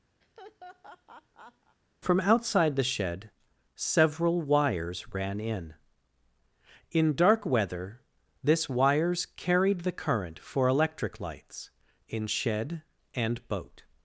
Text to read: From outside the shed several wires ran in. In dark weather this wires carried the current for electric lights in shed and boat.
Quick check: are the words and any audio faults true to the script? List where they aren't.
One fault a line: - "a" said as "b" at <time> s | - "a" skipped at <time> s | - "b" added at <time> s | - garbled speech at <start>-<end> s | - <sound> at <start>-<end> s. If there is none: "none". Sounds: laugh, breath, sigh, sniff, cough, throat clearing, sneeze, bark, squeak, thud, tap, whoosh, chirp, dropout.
- laugh at 0.2-1.8 s